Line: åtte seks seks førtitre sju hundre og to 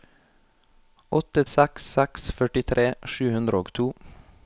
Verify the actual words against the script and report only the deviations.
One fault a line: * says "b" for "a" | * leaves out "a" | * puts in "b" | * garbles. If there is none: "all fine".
all fine